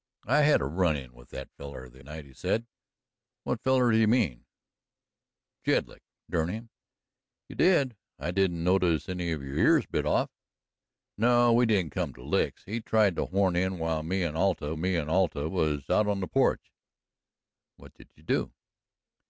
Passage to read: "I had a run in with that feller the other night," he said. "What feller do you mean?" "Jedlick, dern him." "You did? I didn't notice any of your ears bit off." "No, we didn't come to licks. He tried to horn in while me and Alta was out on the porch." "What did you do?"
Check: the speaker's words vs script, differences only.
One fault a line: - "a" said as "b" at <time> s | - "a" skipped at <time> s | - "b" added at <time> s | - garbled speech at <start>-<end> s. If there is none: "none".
- "other" skipped at 2.0 s
- "me and Alta" added at 14.8 s